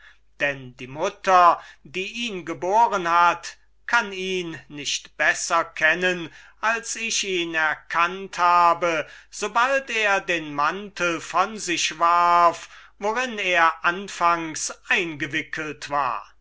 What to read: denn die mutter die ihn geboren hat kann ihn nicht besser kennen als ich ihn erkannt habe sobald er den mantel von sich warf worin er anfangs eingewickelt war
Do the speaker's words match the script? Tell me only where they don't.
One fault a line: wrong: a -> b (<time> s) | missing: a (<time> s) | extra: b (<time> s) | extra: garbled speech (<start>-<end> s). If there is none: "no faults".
no faults